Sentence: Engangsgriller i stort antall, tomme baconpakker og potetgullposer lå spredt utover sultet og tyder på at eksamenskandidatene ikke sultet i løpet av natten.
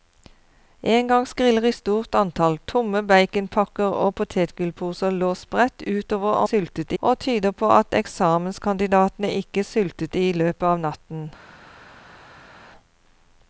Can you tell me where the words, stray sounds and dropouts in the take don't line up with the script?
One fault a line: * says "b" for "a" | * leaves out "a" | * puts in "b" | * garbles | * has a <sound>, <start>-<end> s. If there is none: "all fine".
all fine